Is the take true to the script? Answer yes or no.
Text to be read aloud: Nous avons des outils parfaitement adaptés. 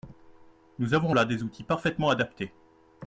no